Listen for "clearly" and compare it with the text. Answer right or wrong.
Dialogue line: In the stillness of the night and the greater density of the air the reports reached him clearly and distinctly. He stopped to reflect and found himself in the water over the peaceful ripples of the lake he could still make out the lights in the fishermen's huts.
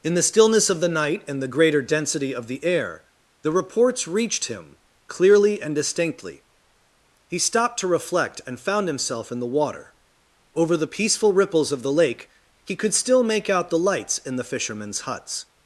right